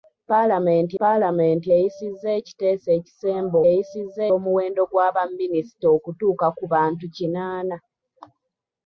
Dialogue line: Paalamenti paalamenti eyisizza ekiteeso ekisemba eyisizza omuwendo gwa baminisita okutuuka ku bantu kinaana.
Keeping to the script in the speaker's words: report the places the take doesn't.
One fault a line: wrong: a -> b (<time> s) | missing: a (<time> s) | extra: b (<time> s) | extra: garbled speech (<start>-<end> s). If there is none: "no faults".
no faults